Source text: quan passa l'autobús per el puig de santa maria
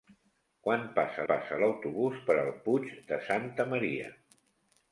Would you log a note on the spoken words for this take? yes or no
yes